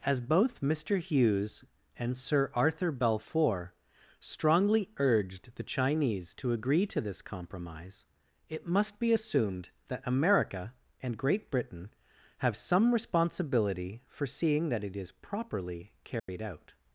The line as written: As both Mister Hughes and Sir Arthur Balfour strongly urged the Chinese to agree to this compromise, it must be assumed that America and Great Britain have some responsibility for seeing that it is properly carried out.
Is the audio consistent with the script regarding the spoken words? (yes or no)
yes